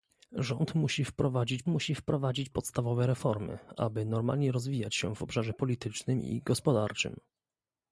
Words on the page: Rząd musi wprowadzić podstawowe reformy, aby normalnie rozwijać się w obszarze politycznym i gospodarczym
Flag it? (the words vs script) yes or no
yes